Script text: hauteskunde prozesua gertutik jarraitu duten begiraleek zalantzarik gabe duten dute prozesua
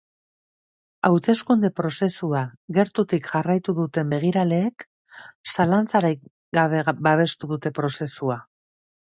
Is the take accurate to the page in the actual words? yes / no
no